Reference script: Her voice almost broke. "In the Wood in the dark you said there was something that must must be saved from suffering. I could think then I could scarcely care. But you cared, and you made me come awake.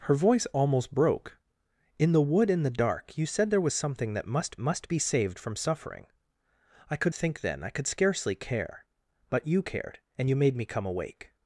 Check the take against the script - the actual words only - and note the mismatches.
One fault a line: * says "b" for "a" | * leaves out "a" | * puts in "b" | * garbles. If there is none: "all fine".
all fine